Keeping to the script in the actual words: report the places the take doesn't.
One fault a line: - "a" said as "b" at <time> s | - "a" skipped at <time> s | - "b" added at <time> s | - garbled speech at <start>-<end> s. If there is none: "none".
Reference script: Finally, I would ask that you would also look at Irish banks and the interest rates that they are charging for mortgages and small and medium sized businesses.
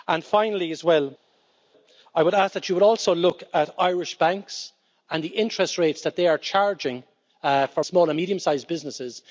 - "mortgages and" skipped at 7.8 s